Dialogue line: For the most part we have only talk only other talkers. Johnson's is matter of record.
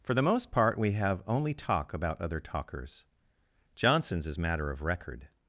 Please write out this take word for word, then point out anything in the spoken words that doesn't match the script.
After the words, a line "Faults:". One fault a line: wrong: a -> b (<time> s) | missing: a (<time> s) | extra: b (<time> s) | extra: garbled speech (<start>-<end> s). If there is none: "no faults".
For the most part we have only talk about other talkers. Johnson's is matter of record.
Faults:
wrong: only -> about (1.9 s)